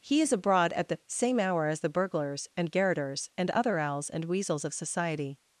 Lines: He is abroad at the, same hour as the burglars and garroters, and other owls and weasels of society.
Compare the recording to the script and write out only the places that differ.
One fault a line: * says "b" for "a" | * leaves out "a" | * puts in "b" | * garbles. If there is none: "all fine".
all fine